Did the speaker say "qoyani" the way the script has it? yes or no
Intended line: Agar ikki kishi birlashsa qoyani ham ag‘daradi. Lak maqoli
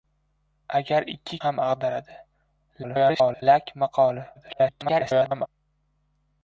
no